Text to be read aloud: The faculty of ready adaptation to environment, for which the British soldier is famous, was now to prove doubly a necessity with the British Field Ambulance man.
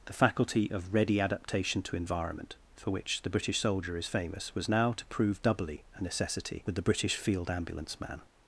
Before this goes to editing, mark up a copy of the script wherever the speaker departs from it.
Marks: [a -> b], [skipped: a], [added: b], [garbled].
The faculty of ready adaptation to environment, for which the British soldier is famous, was now to prove doubly a necessity with the British Field Ambulance man.